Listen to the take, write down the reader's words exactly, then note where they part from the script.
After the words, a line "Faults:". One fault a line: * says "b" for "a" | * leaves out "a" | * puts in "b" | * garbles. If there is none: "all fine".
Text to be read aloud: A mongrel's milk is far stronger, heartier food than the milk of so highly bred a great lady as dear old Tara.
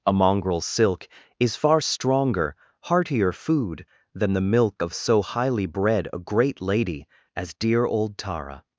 A mongrel's silk is far stronger, heartier food than the milk of so highly bred a great lady as dear old Tara.
Faults:
* says "silk" for "milk"